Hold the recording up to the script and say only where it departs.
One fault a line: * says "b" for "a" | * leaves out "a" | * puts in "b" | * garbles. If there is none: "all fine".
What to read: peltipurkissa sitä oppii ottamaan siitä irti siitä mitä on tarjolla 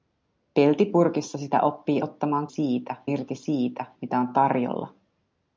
all fine